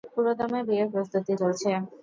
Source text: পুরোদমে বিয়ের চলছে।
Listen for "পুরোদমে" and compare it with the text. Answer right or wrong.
right